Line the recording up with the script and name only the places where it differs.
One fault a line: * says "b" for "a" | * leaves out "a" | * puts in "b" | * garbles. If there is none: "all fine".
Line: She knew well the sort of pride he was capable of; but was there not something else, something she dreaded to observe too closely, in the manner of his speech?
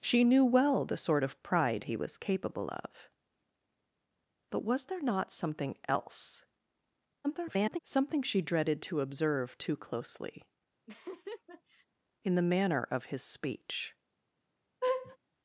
* garbles